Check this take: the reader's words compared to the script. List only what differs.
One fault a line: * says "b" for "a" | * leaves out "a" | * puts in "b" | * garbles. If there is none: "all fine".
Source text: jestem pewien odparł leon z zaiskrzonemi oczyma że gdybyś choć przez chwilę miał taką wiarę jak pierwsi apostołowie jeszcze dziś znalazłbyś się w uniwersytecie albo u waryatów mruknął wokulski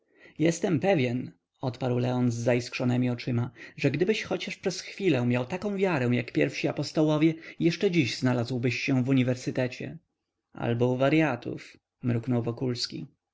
all fine